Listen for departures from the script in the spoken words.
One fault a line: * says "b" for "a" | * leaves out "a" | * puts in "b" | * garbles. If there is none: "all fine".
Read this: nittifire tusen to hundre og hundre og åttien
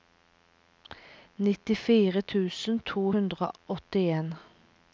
* leaves out "hundre og"